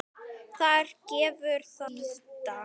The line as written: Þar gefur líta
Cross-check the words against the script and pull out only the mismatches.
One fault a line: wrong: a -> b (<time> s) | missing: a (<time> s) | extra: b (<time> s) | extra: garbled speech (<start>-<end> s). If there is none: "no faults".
no faults